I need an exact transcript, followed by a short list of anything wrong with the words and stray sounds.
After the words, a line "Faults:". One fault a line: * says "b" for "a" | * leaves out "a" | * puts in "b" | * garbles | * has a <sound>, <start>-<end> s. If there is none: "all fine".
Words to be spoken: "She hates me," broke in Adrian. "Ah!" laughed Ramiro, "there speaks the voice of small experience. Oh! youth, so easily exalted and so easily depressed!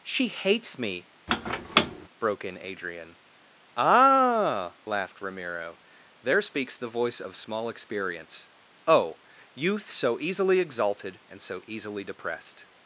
"She hates me," broke in Adrian. "Ah!" laughed Ramiro, "there speaks the voice of small experience. Oh! youth, so easily exalted and so easily depressed!
Faults:
* has a squeak, 1.3-2.1 s